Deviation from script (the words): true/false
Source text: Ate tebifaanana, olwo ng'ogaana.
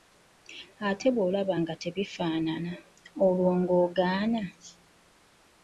true